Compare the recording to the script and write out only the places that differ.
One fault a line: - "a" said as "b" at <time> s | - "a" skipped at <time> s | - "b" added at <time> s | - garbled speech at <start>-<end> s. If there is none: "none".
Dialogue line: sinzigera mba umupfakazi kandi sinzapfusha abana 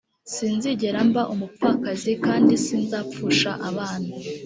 none